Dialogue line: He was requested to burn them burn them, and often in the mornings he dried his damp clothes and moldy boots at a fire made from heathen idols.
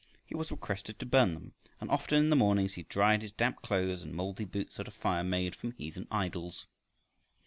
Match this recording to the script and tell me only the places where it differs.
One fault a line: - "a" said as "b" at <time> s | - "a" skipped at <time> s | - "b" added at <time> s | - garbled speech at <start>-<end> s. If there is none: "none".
- "burn them" skipped at 1.5 s